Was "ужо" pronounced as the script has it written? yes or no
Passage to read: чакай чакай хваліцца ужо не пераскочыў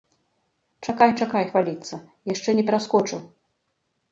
no